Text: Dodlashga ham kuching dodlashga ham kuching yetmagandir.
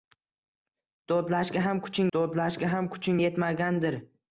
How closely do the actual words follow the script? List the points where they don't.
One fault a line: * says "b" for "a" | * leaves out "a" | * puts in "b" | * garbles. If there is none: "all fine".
all fine